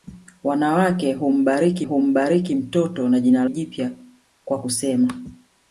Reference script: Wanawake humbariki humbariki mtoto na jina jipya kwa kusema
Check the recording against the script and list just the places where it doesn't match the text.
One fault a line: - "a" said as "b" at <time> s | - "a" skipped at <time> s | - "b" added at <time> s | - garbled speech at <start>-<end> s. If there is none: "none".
none